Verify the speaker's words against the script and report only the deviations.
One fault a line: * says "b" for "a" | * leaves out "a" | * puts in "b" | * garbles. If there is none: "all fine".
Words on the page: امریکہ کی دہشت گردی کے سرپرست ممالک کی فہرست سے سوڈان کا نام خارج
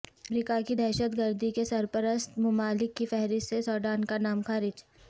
all fine